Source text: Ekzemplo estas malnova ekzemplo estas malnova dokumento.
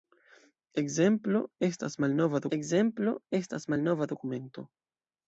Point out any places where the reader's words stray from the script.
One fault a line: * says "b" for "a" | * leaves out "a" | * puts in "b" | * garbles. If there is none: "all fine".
all fine